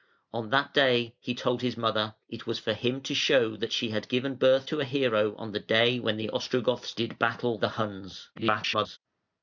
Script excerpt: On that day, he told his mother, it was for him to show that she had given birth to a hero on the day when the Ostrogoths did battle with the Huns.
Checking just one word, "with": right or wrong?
wrong